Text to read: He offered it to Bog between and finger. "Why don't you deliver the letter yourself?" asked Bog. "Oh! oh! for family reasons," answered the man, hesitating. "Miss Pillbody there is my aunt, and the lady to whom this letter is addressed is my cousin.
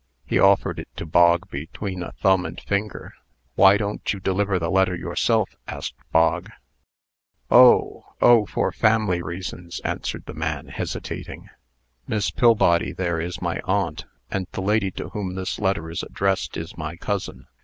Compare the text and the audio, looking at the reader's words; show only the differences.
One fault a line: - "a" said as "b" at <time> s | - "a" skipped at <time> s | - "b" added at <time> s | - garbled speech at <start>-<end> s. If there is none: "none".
- "a thumb" added at 2.0 s